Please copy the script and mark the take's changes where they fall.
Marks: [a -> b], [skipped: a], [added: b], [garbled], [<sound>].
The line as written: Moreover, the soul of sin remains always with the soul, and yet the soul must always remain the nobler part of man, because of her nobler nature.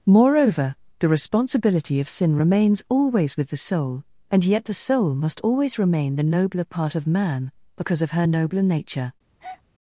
Moreover, the [soul -> responsibility] of sin remains always with the soul, and yet the soul must always remain the nobler part of man, because of her nobler nature. [breath]